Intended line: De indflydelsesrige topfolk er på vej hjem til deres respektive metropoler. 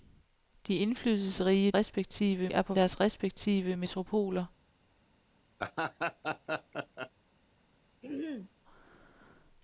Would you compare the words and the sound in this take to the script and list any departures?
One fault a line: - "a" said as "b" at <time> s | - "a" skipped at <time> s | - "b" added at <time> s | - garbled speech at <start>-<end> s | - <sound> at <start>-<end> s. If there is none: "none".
- "topfolk" said as "respektive" at 1.7 s
- "vej hjem til" skipped at 2.7 s
- laugh at 5.6-7.1 s
- throat clearing at 8.0-8.6 s